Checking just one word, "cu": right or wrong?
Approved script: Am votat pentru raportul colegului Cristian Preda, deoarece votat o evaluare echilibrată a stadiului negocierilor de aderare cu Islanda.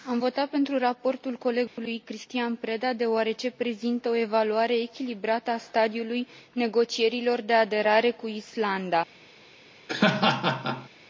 right